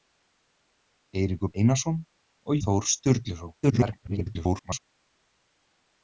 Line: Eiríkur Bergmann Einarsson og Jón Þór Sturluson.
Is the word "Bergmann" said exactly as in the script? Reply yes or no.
no